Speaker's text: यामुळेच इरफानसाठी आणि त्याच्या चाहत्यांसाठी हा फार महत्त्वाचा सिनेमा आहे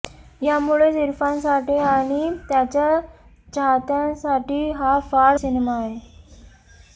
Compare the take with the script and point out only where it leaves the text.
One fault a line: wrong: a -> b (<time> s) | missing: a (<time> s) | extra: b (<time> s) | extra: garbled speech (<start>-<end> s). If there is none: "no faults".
missing: महत्त्वाचा (5.4 s)